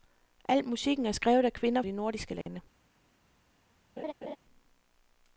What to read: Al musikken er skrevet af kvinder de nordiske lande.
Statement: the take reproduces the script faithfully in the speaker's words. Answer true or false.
true